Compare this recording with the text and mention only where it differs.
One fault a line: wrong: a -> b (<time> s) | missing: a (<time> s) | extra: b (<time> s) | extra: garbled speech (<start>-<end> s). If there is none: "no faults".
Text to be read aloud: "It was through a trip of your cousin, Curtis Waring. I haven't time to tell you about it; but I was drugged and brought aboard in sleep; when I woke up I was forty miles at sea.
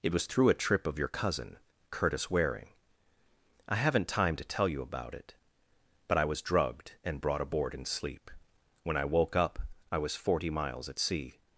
no faults